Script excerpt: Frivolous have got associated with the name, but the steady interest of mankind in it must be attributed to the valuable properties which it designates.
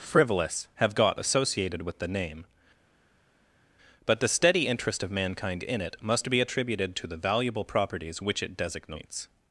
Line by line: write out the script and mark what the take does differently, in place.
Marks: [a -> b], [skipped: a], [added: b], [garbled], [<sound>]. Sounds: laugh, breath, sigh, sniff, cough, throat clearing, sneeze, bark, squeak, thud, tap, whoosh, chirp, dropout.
Frivolous have got associated with the name, but the steady interest of mankind in it must be attributed to the valuable properties which it designates.